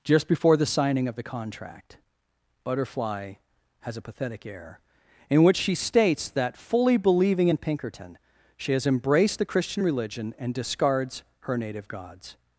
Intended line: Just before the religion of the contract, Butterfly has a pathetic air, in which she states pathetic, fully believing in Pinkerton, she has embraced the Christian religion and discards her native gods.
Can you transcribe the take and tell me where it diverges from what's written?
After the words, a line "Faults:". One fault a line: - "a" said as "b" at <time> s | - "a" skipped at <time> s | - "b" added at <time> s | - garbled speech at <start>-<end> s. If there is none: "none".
Just before the signing of the contract, Butterfly has a pathetic air, in which she states that, fully believing in Pinkerton, she has embraced the Christian religion and discards her native gods.
Faults:
- "religion" said as "signing" at 0.7 s
- "pathetic" said as "that" at 6.3 s